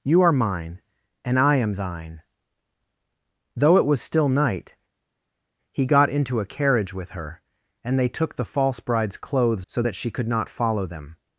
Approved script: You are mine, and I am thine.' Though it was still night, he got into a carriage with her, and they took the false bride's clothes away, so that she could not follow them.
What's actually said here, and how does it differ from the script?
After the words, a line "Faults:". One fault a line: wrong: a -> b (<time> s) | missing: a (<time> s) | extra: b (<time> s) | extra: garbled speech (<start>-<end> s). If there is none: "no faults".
You are mine, and I am thine.' Though it was still night, he got into a carriage with her, and they took the false bride's clothes so that she could not follow them.
Faults:
missing: away (9.7 s)